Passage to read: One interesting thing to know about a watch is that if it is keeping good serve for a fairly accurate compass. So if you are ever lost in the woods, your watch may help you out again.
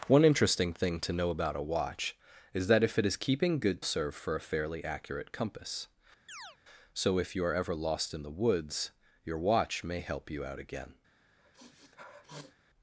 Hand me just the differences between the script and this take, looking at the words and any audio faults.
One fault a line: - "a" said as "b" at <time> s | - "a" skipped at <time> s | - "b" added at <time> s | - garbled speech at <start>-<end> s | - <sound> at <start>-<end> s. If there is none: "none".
- chirp at 6.3-6.6 s
- sniff at 11.4-12.6 s